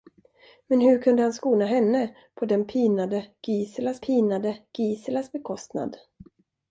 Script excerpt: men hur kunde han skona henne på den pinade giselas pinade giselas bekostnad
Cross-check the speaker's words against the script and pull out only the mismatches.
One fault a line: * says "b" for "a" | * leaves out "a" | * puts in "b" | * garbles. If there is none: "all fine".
all fine